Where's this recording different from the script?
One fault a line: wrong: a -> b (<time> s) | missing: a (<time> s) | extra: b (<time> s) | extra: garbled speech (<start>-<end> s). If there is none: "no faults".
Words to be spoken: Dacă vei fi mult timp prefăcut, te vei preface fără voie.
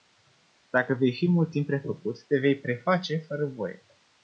no faults